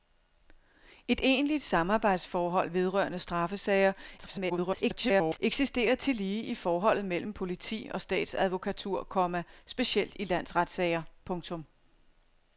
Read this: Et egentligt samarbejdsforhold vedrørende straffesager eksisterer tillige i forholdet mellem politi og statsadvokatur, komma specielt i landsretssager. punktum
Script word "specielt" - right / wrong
right